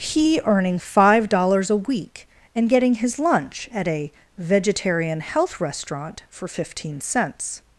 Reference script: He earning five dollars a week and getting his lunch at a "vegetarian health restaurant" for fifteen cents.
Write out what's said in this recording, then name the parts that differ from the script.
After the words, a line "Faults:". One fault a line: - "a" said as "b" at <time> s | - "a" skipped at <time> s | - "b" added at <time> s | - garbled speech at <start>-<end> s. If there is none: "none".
He earning five dollars a week and getting his lunch at a "vegetarian health restaurant" for fifteen cents.
Faults:
none